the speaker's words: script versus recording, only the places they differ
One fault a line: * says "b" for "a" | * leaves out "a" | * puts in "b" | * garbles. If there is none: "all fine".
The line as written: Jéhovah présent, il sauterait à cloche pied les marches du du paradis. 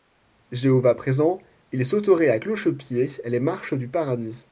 * leaves out "du"